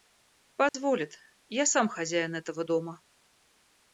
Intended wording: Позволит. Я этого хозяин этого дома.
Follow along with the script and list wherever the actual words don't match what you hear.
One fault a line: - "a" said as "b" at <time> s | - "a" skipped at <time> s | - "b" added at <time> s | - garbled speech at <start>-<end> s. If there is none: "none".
- "этого" said as "сам" at 1.7 s